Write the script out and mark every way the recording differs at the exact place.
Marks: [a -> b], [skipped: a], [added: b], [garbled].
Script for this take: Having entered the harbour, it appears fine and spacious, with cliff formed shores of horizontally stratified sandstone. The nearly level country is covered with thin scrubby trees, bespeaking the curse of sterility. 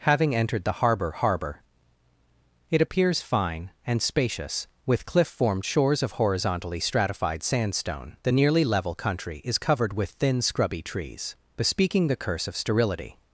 Having entered the harbour, [added: harbour] it appears fine and spacious, with cliff formed shores of horizontally stratified sandstone. The nearly level country is covered with thin scrubby trees, bespeaking the curse of sterility.